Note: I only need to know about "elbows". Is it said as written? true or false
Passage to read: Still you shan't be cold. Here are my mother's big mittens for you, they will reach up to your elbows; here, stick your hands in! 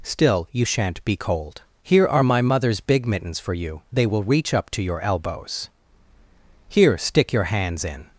true